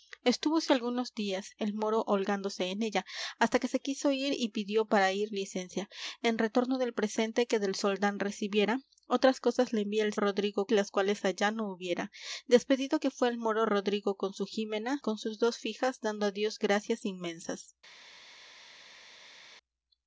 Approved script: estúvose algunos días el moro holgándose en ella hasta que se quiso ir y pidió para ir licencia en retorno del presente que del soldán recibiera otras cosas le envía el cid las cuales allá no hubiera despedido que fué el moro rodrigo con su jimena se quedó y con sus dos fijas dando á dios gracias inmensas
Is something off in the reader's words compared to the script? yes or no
yes